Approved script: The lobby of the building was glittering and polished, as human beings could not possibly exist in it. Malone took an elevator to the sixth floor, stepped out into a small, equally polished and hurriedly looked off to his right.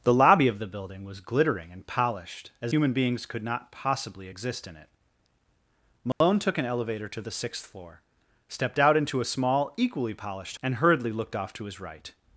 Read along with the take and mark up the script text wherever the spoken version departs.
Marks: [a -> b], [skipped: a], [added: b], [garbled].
The lobby of the building was glittering and polished, as human beings could not possibly exist in it. Malone took an elevator to the sixth floor, stepped out into a small, equally polished and hurriedly looked off to his right.